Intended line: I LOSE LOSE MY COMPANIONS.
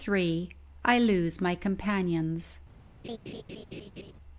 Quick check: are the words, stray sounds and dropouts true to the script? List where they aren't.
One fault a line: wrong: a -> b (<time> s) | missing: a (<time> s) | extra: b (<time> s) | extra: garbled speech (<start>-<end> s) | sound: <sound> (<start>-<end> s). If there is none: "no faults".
missing: LOSE (1.4 s)
sound: laugh (3.0-4.1 s)